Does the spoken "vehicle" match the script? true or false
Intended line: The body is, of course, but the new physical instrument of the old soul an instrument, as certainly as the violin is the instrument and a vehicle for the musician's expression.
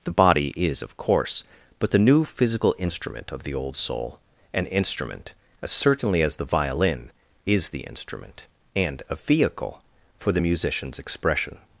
true